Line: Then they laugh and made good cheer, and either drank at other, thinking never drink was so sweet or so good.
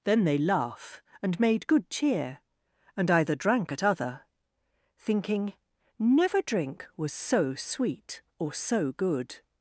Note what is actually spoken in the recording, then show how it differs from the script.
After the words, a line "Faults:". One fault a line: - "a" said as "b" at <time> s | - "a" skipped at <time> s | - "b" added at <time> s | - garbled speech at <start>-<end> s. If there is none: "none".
Then they laugh and made good cheer, and either drank at other, thinking never drink was so sweet or so good.
Faults:
none